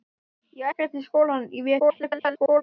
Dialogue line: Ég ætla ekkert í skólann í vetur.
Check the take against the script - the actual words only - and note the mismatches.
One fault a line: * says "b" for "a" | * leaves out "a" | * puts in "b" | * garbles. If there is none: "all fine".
* leaves out "ætla"
* garbles